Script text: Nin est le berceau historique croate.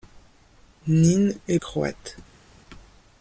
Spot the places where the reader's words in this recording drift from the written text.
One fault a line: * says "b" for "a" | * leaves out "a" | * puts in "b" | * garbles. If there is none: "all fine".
* leaves out "le berceau historique"